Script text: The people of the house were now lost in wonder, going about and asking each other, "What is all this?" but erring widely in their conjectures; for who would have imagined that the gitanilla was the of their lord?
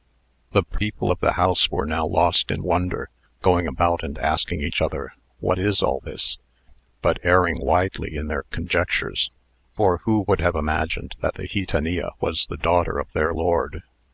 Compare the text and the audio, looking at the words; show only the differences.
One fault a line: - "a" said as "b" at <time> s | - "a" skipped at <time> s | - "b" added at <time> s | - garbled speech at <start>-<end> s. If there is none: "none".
- "daughter" added at 12.6 s